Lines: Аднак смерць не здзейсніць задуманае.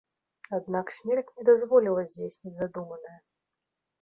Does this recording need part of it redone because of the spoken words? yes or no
yes